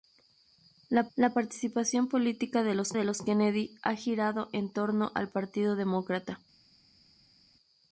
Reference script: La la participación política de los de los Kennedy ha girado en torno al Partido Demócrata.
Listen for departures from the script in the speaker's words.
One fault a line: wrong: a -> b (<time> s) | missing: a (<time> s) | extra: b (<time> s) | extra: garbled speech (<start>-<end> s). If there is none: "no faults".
no faults